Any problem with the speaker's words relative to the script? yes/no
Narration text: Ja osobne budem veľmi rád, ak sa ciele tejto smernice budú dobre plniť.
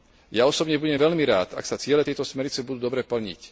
no